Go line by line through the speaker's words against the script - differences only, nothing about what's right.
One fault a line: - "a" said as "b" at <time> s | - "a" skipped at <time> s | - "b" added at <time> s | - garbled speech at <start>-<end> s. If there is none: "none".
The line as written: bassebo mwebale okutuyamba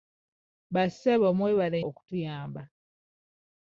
none